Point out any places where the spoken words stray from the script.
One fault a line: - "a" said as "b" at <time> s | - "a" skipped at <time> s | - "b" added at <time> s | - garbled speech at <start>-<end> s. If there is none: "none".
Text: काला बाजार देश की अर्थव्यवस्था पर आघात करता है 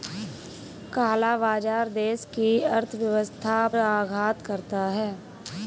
- "पर" skipped at 3.7 s